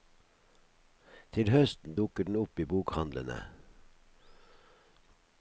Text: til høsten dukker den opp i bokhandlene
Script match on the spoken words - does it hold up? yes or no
yes